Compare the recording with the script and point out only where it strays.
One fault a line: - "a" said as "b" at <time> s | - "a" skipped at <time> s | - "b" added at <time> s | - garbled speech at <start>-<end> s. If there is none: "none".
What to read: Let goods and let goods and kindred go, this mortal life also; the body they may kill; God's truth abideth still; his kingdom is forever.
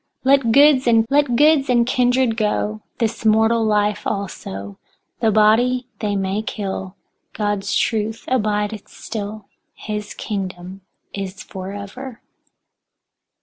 none